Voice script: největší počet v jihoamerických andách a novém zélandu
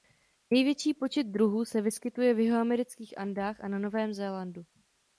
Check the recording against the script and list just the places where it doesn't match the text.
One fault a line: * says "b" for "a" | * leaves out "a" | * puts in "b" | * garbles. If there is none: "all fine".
* puts in "druhů se vyskytuje"
* puts in "na"